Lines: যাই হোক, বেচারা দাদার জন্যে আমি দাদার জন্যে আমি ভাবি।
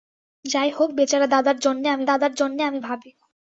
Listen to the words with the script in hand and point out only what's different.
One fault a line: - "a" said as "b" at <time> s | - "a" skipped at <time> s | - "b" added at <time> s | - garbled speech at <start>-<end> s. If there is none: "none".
none